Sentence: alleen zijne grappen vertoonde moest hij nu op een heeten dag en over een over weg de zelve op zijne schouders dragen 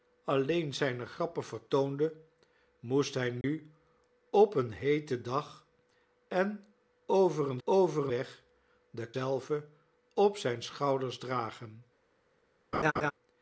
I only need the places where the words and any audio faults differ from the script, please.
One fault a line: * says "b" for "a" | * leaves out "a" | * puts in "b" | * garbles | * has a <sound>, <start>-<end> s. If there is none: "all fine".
* has a dropout, 3.4-3.4 s
* has a laugh, 12.7-13.1 s